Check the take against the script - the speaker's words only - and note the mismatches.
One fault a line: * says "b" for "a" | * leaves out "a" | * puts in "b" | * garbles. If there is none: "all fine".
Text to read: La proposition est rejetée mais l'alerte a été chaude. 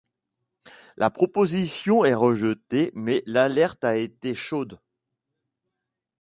all fine